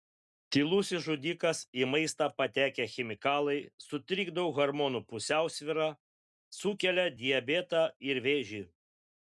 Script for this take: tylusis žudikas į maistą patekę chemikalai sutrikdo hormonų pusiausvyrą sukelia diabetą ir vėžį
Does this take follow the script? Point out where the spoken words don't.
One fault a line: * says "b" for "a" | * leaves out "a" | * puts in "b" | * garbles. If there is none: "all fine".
all fine